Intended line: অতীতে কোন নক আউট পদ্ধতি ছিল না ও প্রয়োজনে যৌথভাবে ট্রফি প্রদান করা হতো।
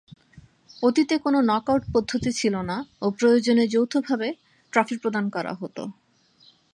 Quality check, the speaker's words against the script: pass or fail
pass